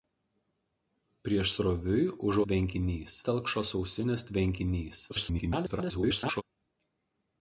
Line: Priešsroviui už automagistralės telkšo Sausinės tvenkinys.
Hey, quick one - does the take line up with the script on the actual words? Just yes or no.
no